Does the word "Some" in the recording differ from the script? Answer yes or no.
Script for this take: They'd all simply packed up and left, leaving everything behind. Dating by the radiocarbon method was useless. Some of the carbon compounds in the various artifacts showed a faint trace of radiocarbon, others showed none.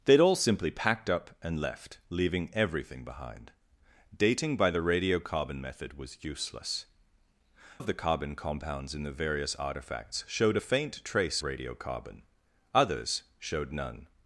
yes